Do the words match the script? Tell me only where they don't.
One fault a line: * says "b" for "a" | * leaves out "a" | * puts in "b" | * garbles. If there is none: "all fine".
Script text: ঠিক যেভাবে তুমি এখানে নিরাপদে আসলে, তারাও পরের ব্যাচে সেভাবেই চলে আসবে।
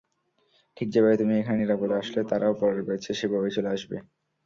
all fine